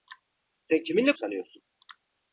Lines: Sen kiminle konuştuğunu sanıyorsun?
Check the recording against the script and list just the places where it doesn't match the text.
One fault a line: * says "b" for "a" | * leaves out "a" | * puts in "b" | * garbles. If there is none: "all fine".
* leaves out "konuştuğunu"